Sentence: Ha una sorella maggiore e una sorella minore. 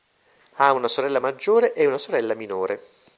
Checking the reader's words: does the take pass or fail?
pass